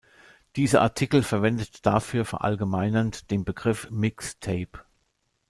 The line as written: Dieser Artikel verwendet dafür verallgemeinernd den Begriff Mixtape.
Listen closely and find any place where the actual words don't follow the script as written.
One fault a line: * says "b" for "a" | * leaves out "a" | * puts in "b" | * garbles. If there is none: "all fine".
all fine